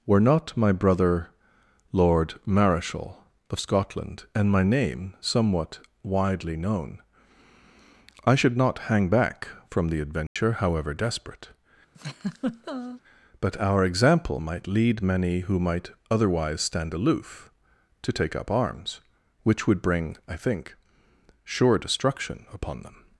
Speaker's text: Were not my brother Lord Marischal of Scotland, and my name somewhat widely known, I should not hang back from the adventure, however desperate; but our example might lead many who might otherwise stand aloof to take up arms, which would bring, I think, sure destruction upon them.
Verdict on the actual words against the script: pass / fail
pass